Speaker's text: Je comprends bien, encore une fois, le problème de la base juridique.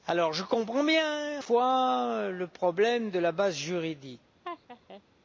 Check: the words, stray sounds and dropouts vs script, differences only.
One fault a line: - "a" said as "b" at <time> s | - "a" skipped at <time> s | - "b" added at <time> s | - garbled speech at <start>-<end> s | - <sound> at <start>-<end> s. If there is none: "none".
- "encore une" skipped at 1.4 s
- laugh at 4.4-5.0 s